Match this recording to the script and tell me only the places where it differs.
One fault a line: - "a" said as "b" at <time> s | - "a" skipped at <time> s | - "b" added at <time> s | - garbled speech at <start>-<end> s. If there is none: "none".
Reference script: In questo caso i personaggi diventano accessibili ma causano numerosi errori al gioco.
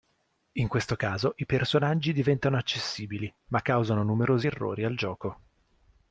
none